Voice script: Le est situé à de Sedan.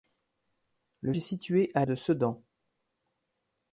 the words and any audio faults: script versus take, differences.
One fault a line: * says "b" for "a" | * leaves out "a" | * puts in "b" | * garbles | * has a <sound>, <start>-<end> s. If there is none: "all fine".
all fine